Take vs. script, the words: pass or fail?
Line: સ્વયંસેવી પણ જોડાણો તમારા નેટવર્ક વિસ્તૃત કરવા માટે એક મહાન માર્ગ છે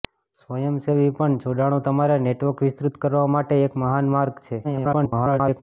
fail